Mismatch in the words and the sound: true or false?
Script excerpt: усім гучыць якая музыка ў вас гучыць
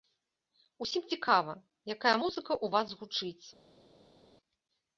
true